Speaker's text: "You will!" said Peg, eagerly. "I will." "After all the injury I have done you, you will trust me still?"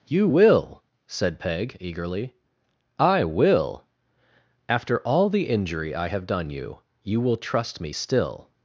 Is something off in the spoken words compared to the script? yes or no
no